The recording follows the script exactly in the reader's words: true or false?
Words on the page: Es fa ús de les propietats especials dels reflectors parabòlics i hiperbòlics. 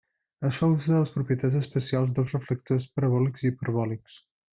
true